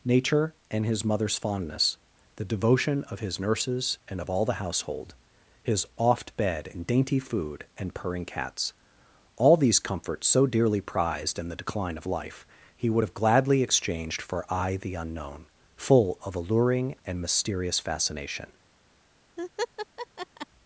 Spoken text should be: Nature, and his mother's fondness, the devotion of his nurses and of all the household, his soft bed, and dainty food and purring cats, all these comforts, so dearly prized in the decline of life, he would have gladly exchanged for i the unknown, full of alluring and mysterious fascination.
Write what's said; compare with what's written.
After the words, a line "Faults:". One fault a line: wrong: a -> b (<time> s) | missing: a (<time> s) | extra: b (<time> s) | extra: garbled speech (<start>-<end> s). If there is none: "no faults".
Nature, and his mother's fondness, the devotion of his nurses and of all the household, his oft bed, and dainty food and purring cats, all these comforts, so dearly prized in the decline of life, he would have gladly exchanged for i the unknown, full of alluring and mysterious fascination.
Faults:
wrong: soft -> oft (6.0 s)